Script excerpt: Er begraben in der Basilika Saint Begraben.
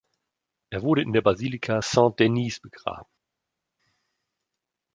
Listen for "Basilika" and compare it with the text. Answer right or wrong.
right